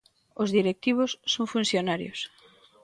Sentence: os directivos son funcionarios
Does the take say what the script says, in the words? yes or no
yes